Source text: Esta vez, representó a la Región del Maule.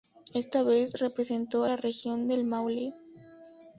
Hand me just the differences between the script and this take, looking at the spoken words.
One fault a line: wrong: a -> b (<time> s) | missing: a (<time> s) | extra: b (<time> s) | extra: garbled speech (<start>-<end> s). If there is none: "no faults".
no faults